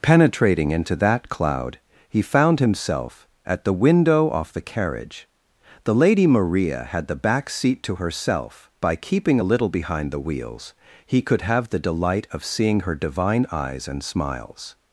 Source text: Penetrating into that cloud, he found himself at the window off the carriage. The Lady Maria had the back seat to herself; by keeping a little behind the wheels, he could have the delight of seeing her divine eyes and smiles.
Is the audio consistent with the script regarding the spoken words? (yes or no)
yes